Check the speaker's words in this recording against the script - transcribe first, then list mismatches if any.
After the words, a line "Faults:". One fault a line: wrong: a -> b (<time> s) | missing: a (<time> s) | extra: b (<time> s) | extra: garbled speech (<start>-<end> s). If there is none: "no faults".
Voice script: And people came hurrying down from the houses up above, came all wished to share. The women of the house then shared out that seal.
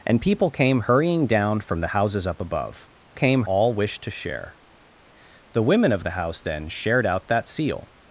And people came hurrying down from the houses up above, came all wished to share. The women of the house then shared out that seal.
Faults:
no faults